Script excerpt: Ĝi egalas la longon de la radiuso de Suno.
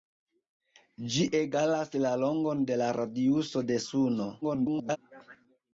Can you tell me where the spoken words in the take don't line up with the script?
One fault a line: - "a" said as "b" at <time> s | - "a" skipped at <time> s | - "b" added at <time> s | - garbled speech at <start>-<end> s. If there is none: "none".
- garbled speech at 4.4-5.0 s